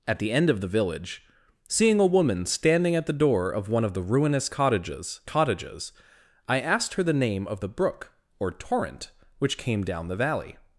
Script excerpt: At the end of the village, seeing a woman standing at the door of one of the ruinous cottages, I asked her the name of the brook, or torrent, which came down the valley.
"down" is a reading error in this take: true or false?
false